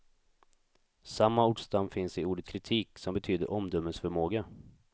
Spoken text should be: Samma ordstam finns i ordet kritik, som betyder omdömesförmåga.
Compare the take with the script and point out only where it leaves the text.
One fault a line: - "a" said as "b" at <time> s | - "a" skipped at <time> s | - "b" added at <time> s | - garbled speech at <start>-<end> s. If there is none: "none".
none